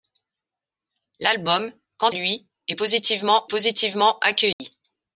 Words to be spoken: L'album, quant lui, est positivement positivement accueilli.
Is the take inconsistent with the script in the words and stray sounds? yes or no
yes